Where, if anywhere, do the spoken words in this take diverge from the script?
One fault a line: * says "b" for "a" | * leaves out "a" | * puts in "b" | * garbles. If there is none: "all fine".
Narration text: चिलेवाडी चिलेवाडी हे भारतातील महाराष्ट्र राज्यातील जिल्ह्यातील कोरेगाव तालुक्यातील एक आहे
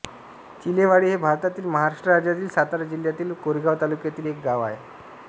* leaves out "चिलेवाडी"
* puts in "सातारा"
* puts in "गाव"